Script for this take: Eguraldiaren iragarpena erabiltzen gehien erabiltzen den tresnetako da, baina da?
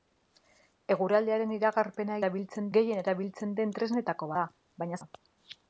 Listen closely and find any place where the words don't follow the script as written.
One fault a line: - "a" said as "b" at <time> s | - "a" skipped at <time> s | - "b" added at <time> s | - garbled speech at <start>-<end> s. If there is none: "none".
none